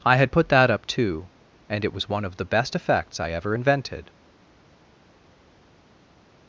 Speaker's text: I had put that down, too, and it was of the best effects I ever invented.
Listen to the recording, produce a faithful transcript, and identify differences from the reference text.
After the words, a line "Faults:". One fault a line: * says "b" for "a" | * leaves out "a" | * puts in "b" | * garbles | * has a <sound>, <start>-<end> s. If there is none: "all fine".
I had put that up, too, and it was one of the best effects I ever invented.
Faults:
* says "up" for "down"
* puts in "one"